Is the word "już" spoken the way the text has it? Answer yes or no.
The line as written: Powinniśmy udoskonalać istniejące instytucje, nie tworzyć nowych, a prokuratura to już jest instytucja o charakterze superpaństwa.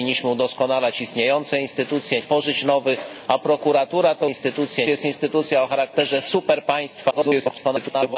no